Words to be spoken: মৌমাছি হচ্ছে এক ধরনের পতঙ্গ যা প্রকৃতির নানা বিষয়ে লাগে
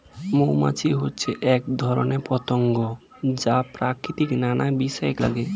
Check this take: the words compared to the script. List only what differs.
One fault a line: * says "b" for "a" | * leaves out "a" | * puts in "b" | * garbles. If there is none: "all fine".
all fine